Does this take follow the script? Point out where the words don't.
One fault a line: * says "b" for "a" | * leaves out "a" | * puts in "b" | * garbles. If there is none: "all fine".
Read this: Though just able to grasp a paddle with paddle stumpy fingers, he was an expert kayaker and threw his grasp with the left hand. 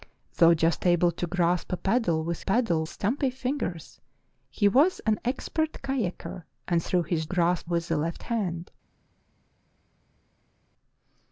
all fine